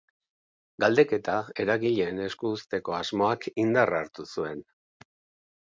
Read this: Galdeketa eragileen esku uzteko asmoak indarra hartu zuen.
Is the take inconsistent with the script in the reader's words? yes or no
no